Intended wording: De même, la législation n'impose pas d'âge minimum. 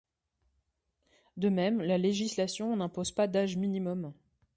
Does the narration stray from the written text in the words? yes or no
no